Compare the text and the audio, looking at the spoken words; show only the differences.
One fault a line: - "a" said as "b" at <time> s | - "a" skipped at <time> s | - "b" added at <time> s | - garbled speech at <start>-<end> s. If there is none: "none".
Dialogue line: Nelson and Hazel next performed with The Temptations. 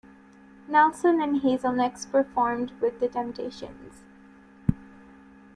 none